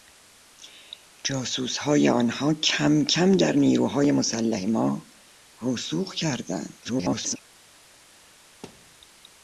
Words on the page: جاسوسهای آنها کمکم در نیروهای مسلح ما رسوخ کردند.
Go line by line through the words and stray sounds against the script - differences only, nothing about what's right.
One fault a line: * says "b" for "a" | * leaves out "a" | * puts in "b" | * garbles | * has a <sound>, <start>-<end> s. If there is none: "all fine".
* garbles
* has a thud, 8.6-9.0 s